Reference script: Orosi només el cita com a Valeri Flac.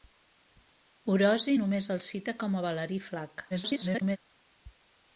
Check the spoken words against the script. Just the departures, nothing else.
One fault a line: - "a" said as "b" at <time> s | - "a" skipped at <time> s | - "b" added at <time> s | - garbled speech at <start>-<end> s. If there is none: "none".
- garbled speech at 3.5-4.2 s